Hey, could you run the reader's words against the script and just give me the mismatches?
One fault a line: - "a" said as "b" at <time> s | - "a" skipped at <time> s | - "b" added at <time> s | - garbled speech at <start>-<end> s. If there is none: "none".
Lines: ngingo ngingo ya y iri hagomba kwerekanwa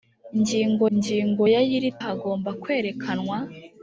none